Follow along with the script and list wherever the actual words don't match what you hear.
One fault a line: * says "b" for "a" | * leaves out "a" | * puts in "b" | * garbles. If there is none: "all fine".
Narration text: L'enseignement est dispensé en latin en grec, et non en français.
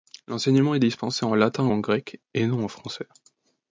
all fine